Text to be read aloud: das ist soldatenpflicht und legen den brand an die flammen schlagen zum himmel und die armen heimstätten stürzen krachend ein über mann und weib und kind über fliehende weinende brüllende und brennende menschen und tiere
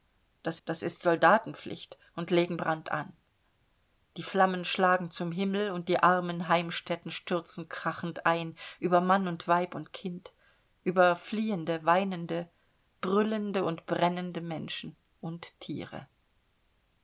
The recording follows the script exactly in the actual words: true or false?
false